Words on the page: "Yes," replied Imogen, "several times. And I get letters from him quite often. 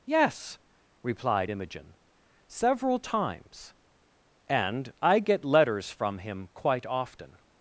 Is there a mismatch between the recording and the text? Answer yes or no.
no